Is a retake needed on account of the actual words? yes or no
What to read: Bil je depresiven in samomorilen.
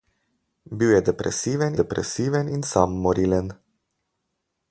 yes